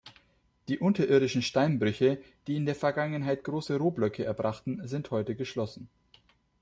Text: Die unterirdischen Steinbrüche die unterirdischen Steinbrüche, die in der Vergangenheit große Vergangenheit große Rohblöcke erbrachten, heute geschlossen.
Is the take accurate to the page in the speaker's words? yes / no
no